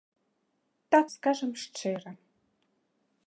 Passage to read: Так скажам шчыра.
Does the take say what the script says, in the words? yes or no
yes